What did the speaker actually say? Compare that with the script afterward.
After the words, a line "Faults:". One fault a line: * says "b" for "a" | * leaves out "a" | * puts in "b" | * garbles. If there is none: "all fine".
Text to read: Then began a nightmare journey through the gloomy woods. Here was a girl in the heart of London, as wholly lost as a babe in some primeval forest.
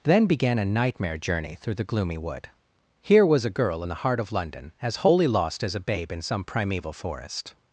Then began a nightmare journey through the gloomy wood. Here was a girl in the heart of London, as wholly lost as a babe in some primeval forest.
Faults:
* says "wood" for "woods"